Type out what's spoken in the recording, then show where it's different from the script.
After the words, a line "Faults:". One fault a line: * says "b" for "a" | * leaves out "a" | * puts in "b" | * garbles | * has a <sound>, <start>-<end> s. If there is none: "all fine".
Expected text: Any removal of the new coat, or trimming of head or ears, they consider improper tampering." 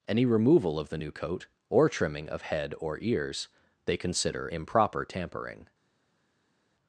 Any removal of the new coat, or trimming of head or ears, they consider improper tampering."
Faults:
all fine